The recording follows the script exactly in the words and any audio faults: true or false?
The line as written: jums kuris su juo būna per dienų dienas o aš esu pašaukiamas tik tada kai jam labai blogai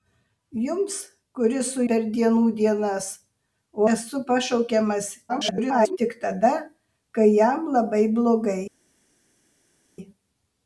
false